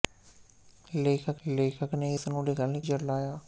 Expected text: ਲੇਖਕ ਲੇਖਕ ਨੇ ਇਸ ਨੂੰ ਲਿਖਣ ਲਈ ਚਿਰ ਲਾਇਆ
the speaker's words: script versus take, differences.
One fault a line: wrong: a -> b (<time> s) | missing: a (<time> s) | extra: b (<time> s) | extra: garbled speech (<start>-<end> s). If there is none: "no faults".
no faults